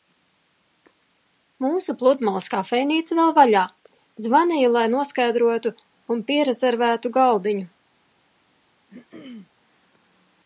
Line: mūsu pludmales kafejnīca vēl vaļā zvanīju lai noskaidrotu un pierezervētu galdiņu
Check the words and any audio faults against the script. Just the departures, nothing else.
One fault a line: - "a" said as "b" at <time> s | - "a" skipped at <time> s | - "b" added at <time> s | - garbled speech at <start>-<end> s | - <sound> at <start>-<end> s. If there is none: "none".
- throat clearing at 8.9-9.5 s